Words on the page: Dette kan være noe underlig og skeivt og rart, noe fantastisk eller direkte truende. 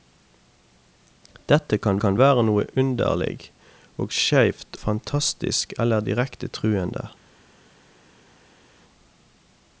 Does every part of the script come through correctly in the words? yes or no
no